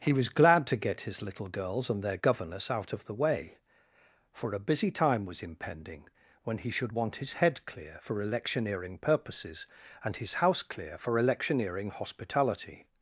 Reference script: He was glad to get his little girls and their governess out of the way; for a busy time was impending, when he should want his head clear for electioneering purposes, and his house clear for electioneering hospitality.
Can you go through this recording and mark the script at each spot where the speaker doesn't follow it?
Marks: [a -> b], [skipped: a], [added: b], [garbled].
He was glad to get his little girls and their governess out of the way; for a busy time was impending, when he should want his head clear for electioneering purposes, and his house clear for electioneering hospitality.